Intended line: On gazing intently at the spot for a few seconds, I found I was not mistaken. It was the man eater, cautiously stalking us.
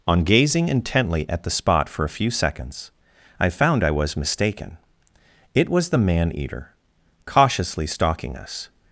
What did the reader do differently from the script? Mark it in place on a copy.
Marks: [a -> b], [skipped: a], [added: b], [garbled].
On gazing intently at the spot for a few seconds, I found I was [skipped: not] mistaken. It was the man eater, cautiously stalking us.